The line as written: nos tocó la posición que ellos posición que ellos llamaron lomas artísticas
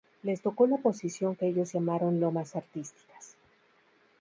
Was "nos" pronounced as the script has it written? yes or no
no